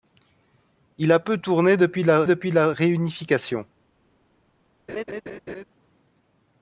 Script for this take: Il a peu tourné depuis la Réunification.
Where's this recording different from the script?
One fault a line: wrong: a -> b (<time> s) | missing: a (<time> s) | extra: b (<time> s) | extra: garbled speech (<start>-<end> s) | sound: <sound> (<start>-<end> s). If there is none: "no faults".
extra: depuis la (2.2 s)
sound: laugh (4.9-5.6 s)